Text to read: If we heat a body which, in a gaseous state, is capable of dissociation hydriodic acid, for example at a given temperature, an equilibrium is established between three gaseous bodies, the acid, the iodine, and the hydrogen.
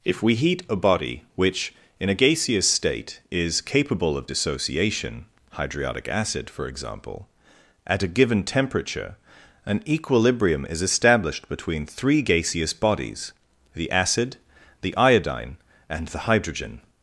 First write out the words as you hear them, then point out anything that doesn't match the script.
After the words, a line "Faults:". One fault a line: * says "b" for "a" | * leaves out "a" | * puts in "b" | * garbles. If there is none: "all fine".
If we heat a body which, in a gaseous state, is capable of dissociation hydriodic acid, for example at a given temperature, an equilibrium is established between three gaseous bodies, the acid, the iodine, and the hydrogen.
Faults:
all fine